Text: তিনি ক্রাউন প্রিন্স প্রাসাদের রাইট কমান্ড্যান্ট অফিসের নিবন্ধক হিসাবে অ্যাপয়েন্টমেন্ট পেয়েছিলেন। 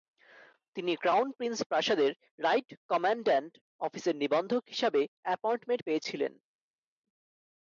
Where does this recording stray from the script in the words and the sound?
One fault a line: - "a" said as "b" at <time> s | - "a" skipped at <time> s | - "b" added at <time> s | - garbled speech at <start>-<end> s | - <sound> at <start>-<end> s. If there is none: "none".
none